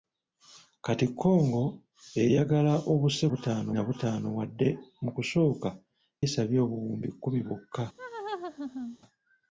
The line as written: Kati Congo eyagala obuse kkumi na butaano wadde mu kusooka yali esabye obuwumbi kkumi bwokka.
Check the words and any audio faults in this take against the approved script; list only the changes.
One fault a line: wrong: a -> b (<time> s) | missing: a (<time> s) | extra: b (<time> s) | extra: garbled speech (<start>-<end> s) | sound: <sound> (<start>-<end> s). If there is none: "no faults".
wrong: kkumi -> butaano (3.3 s)
missing: yali (5.7 s)
sound: laugh (8.0-9.0 s)